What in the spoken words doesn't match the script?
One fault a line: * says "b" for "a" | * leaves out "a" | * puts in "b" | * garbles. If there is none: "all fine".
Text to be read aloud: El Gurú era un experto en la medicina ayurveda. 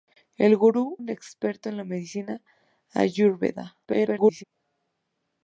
* leaves out "era"
* garbles